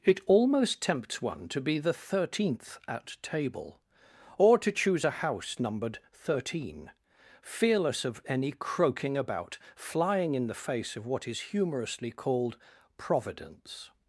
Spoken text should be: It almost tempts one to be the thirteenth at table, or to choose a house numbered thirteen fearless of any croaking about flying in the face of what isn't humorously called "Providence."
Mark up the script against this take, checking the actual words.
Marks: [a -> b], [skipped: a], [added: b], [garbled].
It almost tempts one to be the thirteenth at table, or to choose a house numbered thirteen fearless of any croaking about flying in the face of what [isn't -> is] humorously called "Providence."